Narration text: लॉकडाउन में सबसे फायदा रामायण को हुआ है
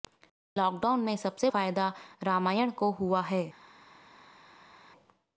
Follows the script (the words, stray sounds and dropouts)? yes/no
yes